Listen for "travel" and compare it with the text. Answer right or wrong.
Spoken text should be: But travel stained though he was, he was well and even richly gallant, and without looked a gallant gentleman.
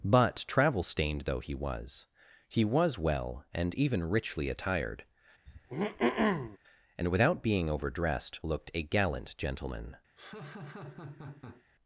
right